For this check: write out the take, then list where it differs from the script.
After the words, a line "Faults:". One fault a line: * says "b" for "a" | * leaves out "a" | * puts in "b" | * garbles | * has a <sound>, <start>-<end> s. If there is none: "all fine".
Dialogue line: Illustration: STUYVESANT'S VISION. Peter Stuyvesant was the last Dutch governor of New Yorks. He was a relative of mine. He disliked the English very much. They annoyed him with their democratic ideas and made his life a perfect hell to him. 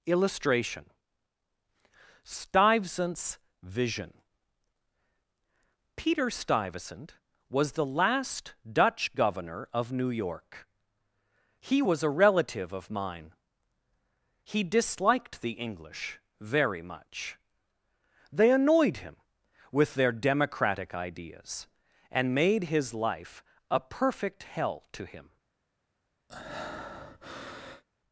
Illustration: STUYVESANT'S VISION. Peter Stuyvesant was the last Dutch governor of New York. He was a relative of mine. He disliked the English very much. They annoyed him with their democratic ideas and made his life a perfect hell to him.
Faults:
* says "York" for "Yorks"
* has a breath, 26.3-27.8 s